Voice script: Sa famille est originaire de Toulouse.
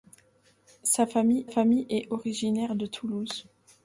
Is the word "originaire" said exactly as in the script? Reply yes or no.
yes